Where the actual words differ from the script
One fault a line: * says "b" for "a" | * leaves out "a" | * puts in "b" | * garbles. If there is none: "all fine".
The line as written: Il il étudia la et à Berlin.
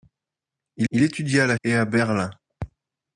all fine